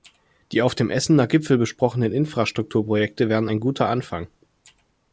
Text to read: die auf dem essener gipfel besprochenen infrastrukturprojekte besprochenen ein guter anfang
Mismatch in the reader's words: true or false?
true